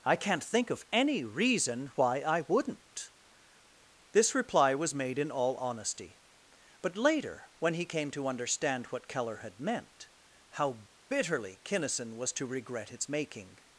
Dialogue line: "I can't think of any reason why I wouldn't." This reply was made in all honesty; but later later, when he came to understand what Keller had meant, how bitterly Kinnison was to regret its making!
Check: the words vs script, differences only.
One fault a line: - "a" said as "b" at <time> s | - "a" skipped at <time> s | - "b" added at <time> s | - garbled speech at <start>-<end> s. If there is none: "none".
- "later" skipped at 7.5 s